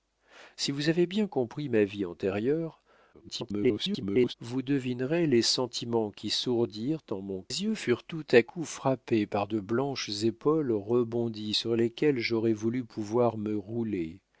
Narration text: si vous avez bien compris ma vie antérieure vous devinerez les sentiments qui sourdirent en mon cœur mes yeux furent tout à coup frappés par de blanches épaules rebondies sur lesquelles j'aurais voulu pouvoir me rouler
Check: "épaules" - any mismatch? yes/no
no